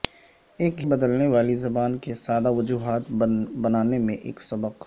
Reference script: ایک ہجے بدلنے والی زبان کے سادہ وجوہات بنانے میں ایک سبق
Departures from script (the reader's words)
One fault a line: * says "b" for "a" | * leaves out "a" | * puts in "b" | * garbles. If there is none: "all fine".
* leaves out "ہجے"